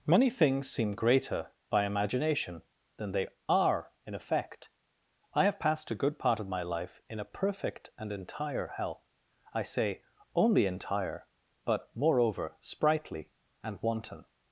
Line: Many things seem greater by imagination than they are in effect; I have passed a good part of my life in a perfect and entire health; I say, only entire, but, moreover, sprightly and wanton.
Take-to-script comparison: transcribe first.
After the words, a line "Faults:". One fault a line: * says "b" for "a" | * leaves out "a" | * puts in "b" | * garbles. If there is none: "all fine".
Many things seem greater by imagination than they are in effect; I have passed a good part of my life in a perfect and entire health; I say, only entire, but, moreover, sprightly and wanton.
Faults:
all fine